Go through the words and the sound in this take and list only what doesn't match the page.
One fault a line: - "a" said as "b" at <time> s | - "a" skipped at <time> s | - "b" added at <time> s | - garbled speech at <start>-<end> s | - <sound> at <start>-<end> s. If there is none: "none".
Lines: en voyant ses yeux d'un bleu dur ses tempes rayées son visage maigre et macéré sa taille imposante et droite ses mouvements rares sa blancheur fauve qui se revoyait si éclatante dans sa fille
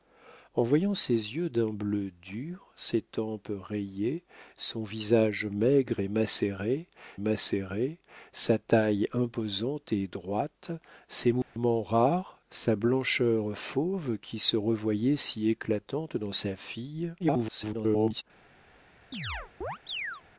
- "macéré" added at 7.2 s
- dropout at 11.4-11.6 s
- garbled speech at 17.2-18.2 s
- chirp at 19.1-20.2 s